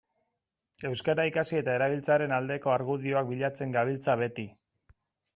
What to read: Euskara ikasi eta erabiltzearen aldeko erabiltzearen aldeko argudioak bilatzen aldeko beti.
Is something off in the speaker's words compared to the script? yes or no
yes